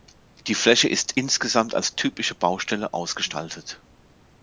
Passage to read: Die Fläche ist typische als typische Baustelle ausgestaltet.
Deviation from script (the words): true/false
true